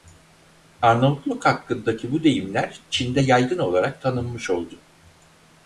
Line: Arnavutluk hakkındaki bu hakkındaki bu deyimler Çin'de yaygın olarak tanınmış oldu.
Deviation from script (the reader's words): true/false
true